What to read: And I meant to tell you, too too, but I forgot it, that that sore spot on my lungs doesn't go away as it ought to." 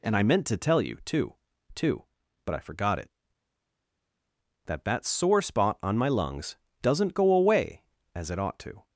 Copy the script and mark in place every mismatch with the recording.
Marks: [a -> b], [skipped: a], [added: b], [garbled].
And I meant to tell you, too too, but I forgot it, that that sore spot on my lungs doesn't go away as it ought to."